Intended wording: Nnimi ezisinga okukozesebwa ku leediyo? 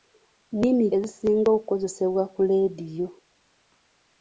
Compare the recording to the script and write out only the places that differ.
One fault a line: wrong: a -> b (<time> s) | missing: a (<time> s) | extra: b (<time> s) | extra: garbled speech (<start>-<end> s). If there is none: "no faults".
no faults